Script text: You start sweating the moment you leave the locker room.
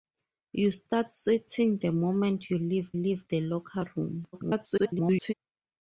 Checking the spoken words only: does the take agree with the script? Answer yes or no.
no